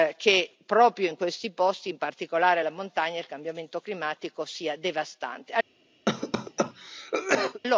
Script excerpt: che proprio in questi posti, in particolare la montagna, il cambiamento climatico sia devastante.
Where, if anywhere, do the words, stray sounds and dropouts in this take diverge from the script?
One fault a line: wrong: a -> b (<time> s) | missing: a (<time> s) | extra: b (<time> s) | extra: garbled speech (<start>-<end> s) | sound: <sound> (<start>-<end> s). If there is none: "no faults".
sound: cough (6.1-7.6 s)